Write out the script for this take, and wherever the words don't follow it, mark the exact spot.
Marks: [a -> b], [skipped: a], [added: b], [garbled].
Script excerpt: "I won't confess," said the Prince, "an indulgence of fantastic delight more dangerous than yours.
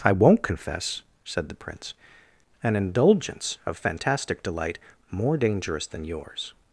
"I won't confess," said the Prince, "an indulgence of fantastic delight more dangerous than yours.